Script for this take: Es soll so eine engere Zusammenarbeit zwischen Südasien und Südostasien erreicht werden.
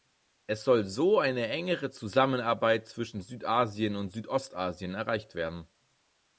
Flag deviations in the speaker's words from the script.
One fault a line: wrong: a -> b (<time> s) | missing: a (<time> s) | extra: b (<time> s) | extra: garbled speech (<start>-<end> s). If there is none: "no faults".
no faults